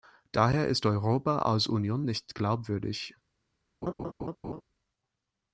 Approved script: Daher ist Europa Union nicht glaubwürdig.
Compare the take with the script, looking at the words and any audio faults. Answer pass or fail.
fail